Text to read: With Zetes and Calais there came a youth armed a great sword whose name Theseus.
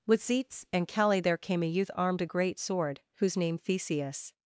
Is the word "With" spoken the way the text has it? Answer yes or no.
yes